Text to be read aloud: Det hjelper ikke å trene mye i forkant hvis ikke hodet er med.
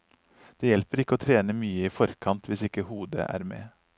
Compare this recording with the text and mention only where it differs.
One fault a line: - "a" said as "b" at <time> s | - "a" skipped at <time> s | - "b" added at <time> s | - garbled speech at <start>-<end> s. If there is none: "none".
none